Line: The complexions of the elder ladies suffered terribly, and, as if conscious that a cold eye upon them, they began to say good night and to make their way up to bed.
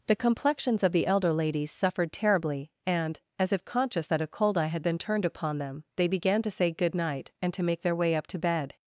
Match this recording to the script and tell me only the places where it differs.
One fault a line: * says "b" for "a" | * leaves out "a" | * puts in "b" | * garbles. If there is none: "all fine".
* puts in "had been turned"